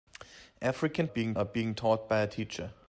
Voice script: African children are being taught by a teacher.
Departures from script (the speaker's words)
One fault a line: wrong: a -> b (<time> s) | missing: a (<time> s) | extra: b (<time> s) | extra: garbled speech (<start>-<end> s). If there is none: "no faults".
wrong: children -> being (1.0 s)